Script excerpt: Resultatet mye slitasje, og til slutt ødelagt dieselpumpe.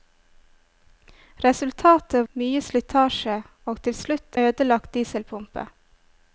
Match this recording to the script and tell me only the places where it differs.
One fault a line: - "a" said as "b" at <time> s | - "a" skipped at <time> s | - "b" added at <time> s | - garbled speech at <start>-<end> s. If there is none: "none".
none